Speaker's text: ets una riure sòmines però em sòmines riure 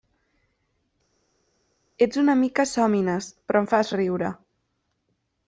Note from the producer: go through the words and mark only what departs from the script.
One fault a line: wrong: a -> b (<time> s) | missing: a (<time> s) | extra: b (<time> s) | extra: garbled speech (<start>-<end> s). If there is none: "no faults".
wrong: riure -> mica (2.4 s)
wrong: sòmines -> fas (3.7 s)